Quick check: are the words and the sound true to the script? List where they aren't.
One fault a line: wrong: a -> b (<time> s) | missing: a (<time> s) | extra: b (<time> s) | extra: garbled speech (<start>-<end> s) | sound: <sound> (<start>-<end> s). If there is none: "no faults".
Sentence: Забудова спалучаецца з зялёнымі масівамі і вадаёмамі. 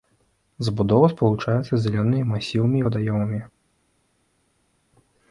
no faults